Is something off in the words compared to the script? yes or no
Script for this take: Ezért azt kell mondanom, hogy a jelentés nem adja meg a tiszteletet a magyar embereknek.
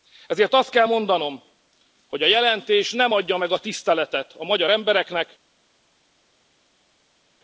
no